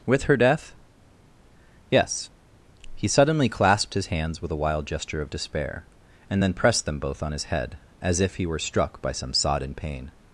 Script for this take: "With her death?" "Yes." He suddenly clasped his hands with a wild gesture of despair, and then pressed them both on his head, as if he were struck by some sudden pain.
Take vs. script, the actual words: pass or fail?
fail